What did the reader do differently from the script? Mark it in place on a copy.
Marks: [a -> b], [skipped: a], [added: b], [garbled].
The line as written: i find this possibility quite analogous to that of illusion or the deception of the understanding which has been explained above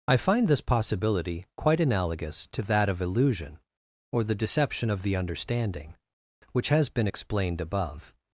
i find this possibility quite analogous to that of illusion or the deception of the understanding which has been explained above